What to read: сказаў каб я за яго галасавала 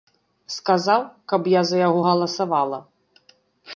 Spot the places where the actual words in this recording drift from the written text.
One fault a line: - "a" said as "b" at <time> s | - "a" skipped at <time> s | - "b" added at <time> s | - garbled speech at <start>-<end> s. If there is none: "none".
none